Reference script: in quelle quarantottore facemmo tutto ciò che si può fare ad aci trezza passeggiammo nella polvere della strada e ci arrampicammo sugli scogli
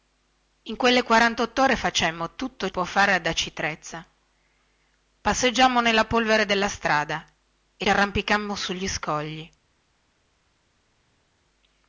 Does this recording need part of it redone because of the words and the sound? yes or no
yes